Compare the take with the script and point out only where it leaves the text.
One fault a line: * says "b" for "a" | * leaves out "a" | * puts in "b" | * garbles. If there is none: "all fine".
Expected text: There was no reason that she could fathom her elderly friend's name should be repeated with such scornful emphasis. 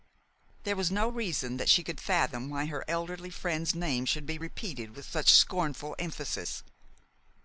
* puts in "why"